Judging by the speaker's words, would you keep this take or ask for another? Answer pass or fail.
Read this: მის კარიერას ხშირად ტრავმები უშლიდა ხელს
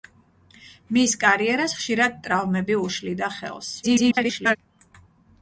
fail